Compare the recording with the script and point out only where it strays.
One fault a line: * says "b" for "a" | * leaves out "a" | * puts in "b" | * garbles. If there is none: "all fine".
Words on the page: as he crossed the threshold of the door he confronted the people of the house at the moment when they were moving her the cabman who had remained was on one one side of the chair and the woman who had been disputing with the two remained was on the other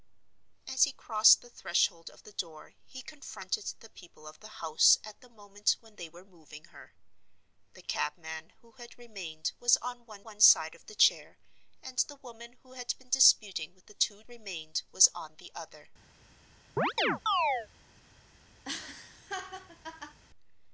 all fine